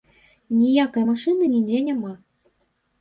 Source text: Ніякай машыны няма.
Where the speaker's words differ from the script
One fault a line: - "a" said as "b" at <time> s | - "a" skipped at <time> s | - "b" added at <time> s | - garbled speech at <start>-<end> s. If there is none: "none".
- "нідзе" added at 1.5 s